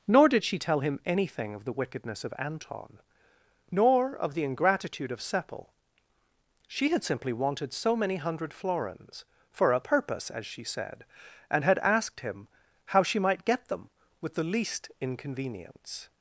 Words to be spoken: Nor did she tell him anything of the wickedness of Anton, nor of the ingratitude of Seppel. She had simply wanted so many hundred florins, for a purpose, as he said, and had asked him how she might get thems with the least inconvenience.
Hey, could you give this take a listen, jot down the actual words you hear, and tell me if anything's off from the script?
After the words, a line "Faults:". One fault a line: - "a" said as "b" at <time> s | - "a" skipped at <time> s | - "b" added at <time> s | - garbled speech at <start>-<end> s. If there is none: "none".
Nor did she tell him anything of the wickedness of Anton, nor of the ingratitude of Seppel. She had simply wanted so many hundred florins, for a purpose, as she said, and had asked him how she might get them with the least inconvenience.
Faults:
- "he" said as "she" at 10.4 s
- "thems" said as "them" at 13.7 s